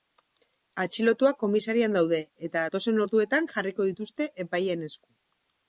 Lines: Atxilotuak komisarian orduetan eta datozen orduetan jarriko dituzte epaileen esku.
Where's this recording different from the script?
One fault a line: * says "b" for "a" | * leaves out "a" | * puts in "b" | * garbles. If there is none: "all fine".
* says "daude" for "orduetan"